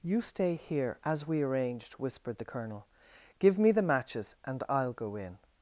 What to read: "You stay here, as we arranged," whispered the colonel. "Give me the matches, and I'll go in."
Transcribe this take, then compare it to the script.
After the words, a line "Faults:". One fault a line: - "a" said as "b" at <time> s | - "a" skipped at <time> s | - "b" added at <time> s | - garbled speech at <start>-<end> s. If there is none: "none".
"You stay here, as we arranged," whispered the colonel. "Give me the matches, and I'll go in."
Faults:
none